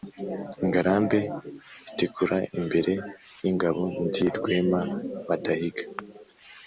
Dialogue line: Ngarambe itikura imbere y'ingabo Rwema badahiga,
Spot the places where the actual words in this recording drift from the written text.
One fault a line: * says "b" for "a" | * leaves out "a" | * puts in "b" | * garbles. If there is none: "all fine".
* puts in "ndi"